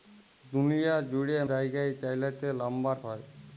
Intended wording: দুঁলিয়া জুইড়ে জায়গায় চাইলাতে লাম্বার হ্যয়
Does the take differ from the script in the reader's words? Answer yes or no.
no